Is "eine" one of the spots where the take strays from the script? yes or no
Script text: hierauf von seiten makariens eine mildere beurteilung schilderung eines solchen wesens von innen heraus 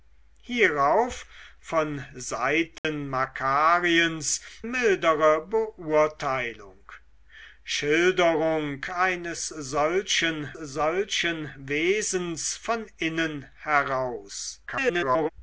yes